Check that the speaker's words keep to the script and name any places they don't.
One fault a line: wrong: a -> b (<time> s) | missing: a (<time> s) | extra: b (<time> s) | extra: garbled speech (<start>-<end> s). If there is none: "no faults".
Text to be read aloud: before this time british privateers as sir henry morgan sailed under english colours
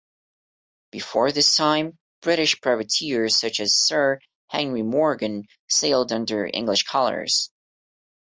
extra: such (3.4 s)